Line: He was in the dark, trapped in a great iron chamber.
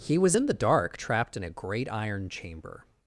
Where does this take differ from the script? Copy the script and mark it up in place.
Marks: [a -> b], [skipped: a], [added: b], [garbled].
He was in the dark, trapped in a great iron chamber.